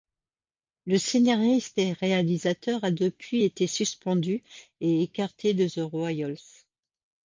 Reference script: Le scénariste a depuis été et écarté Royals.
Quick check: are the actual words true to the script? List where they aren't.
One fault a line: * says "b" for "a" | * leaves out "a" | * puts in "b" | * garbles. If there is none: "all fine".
* puts in "et réalisateur"
* puts in "suspendu"
* puts in "de The"